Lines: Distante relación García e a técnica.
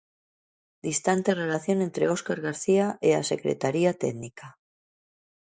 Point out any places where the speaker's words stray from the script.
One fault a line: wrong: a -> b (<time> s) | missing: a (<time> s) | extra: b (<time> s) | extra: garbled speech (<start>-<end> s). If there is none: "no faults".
extra: entre Óscar (1.9 s)
extra: secretaría (3.3 s)